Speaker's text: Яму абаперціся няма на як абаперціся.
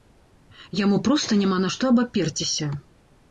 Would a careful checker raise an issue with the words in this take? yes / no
yes